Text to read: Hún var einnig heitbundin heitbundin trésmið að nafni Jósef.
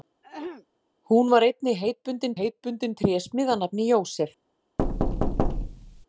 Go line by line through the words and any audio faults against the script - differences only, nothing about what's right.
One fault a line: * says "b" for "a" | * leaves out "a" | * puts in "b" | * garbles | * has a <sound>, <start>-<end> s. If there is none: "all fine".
* has a throat clearing, 0.2-0.7 s
* has a thud, 4.8-6.1 s